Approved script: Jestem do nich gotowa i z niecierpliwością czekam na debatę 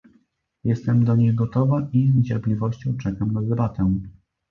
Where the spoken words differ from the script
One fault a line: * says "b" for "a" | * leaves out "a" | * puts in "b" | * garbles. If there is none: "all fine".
all fine